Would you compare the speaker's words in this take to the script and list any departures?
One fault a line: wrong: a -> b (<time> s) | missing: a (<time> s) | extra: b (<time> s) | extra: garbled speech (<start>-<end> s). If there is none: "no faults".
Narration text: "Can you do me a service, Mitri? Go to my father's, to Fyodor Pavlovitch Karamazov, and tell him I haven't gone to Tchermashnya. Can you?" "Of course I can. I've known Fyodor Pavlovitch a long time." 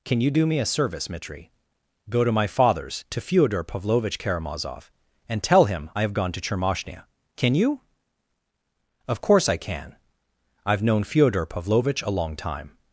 wrong: haven't -> have (6.0 s)